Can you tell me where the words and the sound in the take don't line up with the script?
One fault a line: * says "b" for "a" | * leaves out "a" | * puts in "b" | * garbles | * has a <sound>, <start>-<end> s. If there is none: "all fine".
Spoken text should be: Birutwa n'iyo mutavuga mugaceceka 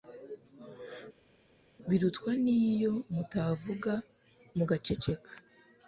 all fine